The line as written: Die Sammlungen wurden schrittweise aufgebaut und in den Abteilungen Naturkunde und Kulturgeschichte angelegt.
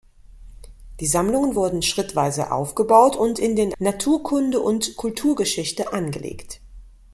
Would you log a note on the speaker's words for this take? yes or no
yes